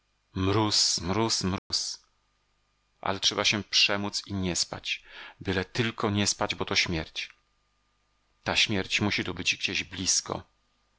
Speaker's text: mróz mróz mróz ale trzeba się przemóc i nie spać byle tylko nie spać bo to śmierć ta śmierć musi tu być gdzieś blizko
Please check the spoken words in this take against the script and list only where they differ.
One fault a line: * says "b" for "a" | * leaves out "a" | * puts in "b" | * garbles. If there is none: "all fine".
all fine